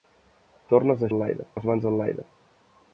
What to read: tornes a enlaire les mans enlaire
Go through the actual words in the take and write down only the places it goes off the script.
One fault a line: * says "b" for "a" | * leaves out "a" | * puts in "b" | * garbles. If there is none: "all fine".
all fine